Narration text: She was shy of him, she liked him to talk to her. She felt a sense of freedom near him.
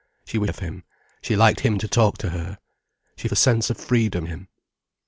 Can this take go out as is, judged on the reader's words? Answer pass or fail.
fail